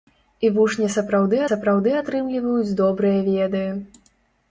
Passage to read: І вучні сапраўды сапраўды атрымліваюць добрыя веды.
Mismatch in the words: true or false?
false